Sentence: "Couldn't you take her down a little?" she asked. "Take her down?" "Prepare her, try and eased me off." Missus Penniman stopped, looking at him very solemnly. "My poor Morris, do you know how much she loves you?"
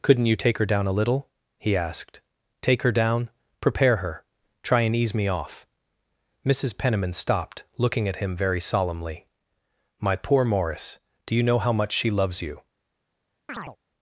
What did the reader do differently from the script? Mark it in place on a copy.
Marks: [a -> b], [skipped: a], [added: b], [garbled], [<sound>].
"Couldn't you take her down a little?" [she -> he] asked. "Take her down?" "Prepare her, try and [eased -> ease] me off." Missus Penniman stopped, looking at him very solemnly. "My poor Morris, do you know how much she loves you?" [chirp]